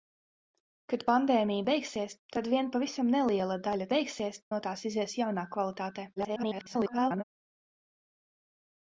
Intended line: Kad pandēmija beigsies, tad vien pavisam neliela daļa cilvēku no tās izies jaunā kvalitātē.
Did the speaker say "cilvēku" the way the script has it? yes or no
no